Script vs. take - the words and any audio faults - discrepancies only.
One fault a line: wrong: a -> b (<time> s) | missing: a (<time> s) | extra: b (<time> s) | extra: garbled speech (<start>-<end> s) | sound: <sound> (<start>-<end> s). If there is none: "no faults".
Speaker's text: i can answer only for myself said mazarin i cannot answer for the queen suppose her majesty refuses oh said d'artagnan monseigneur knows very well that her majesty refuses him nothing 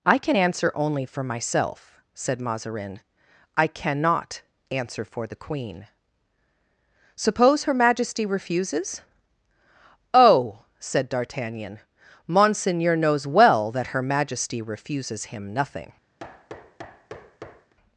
missing: very (13.3 s)
sound: thud (16.2-17.7 s)